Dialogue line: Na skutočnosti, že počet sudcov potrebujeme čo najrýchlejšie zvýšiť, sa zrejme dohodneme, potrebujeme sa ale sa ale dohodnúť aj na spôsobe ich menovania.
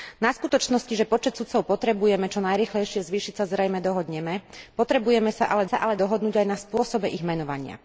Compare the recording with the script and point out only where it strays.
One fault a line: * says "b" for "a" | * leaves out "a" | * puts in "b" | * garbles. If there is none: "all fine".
all fine